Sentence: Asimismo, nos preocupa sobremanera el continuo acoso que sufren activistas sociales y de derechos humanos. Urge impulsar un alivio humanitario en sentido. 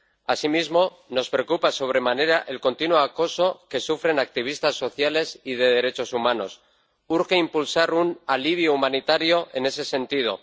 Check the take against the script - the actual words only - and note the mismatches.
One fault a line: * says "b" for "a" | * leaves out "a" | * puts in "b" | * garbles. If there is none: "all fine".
* puts in "ese"